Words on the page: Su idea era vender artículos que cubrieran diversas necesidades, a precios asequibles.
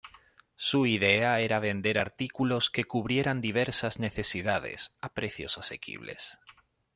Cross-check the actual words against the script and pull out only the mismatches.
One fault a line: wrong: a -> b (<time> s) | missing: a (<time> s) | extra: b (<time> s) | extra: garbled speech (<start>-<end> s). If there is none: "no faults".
no faults